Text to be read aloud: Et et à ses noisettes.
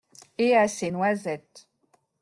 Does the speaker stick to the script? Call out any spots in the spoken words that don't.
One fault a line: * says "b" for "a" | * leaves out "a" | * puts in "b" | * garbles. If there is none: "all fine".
* leaves out "et"